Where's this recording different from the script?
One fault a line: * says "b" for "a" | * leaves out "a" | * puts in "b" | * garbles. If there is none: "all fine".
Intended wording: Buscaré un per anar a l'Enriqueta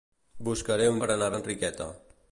all fine